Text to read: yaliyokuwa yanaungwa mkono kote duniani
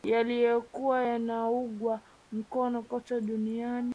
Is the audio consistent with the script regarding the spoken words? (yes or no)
yes